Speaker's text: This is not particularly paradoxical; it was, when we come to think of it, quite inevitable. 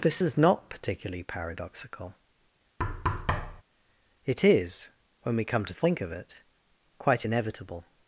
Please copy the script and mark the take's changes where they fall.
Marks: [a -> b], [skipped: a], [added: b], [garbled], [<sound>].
This is not particularly paradoxical; [thud] it [was, -> is] when we come to think of it, quite inevitable.